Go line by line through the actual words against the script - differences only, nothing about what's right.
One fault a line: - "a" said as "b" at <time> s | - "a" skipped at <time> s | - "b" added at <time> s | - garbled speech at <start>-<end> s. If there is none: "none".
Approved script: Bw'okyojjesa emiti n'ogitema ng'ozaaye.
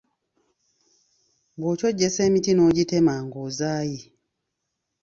none